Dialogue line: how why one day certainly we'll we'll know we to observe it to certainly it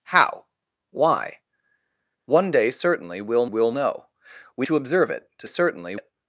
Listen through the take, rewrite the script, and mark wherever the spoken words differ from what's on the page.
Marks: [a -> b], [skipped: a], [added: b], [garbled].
how why one day certainly we'll we'll know we to observe it to certainly it